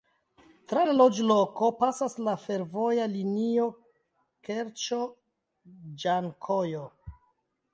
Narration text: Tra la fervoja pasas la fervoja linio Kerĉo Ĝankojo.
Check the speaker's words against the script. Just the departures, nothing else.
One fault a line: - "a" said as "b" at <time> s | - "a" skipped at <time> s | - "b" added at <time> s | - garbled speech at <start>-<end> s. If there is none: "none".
- "fervoja" said as "loĝloko" at 1.0 s